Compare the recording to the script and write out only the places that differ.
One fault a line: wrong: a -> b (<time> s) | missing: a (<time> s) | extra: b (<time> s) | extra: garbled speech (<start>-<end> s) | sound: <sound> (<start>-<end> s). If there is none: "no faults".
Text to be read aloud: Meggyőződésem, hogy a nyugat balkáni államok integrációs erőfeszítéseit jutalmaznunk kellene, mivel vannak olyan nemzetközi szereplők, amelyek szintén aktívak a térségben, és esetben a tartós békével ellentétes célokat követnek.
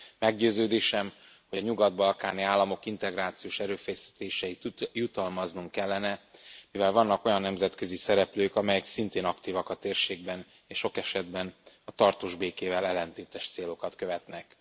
extra: sok (10.8 s)